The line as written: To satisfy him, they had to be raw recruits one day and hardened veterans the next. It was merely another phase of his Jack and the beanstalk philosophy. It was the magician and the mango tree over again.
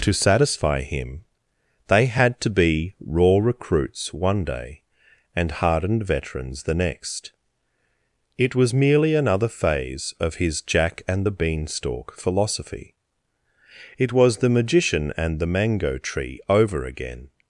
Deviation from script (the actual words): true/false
false